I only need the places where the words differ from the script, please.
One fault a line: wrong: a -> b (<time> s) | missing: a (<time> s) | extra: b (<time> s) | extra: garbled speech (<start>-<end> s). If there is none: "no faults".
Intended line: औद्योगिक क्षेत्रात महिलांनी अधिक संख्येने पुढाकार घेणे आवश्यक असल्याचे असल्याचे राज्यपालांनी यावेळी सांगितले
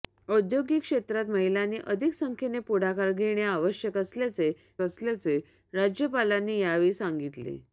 no faults